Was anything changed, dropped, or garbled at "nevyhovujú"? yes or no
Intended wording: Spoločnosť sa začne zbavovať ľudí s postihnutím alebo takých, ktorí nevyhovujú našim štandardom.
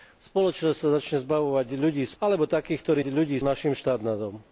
yes